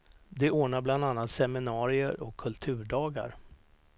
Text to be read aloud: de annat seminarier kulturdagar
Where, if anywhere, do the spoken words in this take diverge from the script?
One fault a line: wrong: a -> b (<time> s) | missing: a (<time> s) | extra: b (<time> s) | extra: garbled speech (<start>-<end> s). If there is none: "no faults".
extra: ordnar bland (0.5 s)
extra: och (2.2 s)